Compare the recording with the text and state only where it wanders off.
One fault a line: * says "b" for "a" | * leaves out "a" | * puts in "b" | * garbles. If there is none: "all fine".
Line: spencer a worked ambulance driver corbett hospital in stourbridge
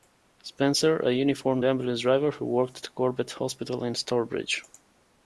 * says "uniformed" for "worked"
* puts in "who worked at"